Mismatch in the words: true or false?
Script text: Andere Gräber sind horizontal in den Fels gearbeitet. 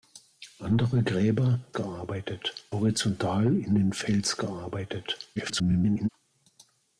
true